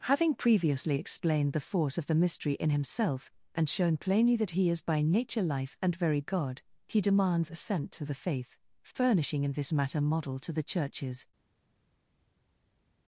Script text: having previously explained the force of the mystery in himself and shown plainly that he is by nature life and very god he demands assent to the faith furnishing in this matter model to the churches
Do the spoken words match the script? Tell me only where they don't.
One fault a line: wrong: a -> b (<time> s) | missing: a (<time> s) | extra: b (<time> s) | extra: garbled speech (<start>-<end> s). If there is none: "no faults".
no faults